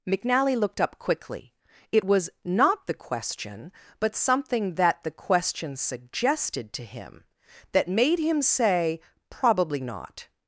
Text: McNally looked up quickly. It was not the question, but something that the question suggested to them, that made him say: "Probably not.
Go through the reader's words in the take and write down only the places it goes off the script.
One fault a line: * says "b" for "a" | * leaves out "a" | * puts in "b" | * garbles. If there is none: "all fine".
* says "him" for "them"